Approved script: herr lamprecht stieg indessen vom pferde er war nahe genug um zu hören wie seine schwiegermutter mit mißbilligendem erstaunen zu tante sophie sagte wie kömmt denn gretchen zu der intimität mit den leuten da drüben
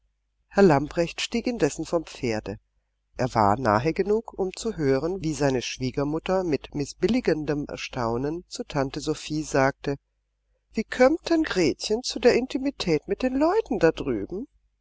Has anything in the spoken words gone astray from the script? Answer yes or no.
no